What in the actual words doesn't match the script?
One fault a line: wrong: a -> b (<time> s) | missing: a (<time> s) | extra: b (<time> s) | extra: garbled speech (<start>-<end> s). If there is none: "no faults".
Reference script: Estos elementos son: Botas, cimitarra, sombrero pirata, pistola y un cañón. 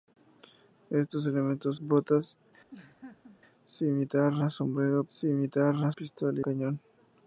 missing: son (1.8 s)
wrong: pirata -> cimitarra (5.1 s)
missing: un (6.4 s)